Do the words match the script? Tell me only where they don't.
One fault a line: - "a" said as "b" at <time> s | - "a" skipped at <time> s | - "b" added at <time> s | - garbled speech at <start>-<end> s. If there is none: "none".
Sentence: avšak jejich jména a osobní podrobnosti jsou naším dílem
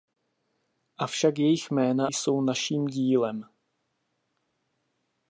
- "a osobní podrobnosti" skipped at 2.1 s